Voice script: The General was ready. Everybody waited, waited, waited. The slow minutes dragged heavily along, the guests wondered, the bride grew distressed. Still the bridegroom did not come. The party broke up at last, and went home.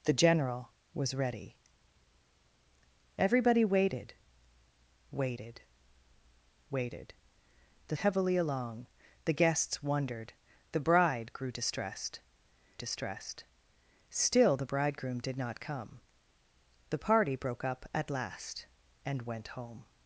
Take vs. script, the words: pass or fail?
fail